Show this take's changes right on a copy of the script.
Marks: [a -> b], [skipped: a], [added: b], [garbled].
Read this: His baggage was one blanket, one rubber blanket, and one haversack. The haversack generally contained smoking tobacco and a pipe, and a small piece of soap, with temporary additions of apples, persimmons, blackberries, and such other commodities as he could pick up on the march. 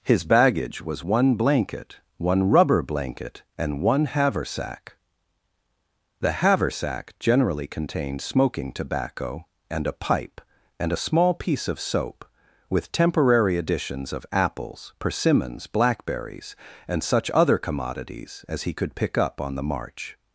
His baggage was one blanket, one rubber blanket, and one haversack. The haversack generally contained smoking tobacco and a pipe, and a small piece of soap, with temporary additions of apples, persimmons, blackberries, and such other commodities as he could pick up on the march.